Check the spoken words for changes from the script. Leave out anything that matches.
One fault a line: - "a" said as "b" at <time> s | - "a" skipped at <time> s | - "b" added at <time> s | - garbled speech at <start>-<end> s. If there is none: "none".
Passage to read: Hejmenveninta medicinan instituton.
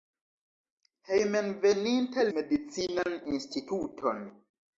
none